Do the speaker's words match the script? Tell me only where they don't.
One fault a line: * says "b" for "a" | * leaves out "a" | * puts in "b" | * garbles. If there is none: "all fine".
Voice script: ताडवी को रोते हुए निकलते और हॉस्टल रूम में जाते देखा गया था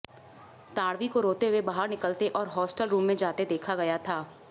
* puts in "बाहर"